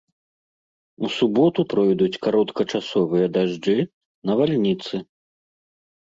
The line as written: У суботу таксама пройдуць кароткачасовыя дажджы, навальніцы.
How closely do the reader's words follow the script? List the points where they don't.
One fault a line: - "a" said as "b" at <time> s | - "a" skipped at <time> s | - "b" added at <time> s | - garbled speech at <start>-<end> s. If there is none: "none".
- "таксама" skipped at 1.6 s